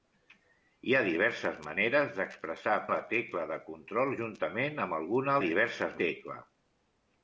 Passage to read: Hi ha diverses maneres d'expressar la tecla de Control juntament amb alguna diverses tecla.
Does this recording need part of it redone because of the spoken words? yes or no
no